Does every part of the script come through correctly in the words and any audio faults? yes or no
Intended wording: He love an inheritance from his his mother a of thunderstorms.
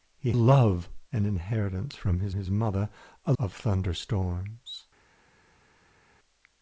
yes